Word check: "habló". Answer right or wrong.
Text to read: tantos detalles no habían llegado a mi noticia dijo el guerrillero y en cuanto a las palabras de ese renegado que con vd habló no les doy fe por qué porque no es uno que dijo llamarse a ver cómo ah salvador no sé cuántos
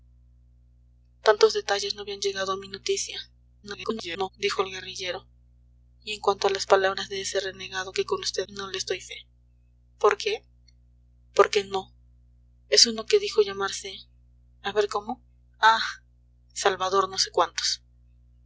wrong